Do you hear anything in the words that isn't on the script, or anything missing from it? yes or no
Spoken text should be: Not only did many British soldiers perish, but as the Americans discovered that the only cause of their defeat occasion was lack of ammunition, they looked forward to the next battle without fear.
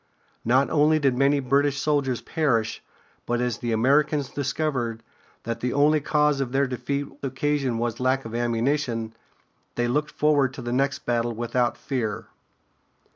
no